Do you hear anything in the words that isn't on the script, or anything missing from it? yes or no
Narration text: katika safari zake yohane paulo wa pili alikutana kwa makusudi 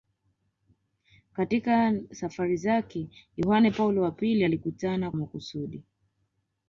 yes